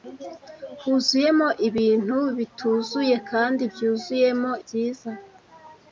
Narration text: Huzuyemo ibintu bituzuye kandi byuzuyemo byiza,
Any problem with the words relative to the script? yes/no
no